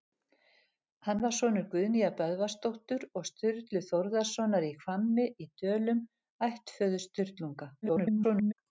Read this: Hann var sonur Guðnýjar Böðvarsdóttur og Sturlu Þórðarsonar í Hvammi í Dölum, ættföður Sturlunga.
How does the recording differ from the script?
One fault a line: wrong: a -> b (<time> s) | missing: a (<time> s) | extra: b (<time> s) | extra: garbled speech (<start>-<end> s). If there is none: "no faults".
extra: garbled speech (7.8-8.5 s)